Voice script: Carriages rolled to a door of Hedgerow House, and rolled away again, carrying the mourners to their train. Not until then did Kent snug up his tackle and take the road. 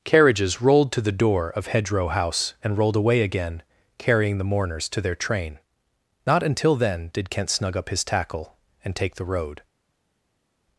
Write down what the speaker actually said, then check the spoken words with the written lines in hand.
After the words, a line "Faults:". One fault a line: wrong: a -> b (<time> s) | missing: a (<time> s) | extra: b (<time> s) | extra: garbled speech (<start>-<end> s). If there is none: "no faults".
Carriages rolled to the door of Hedgerow House, and rolled away again, carrying the mourners to their train. Not until then did Kent snug up his tackle and take the road.
Faults:
wrong: a -> the (1.0 s)